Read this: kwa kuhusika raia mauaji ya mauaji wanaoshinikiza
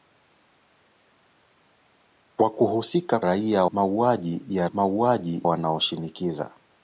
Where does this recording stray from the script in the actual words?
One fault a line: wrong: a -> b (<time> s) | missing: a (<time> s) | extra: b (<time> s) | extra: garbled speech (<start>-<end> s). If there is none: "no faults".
no faults